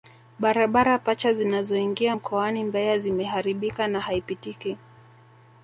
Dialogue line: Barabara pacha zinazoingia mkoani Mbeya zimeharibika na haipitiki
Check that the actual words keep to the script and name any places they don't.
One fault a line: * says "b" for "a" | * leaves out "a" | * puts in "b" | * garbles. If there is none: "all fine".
all fine